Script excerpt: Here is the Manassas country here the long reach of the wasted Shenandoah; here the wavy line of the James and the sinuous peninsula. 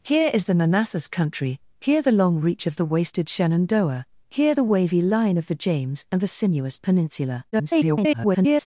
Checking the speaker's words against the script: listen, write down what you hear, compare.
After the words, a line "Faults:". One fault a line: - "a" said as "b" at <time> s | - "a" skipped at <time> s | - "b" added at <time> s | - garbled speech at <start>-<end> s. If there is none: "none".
Here is the Manassas country here the long reach of the wasted Shenandoah; here the wavy line of the James and the sinuous peninsula. [garbled]
Faults:
- garbled speech at 7.5-8.7 s